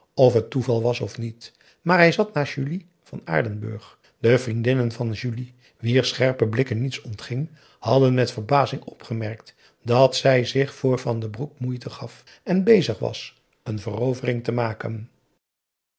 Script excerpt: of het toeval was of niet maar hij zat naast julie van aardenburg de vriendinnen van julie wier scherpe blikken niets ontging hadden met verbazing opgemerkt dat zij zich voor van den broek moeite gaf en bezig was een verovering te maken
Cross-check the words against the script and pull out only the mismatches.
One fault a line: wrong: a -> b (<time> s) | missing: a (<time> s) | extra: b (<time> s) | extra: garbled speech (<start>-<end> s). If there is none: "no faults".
no faults